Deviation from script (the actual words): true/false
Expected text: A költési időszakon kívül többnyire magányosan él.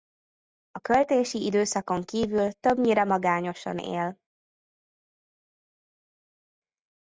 false